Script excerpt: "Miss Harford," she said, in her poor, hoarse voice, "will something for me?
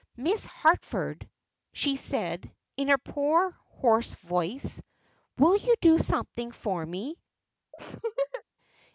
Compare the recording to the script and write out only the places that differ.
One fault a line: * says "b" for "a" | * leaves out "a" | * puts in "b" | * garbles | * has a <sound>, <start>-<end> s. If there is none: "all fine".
* puts in "you do"
* has a laugh, 7.7-8.4 s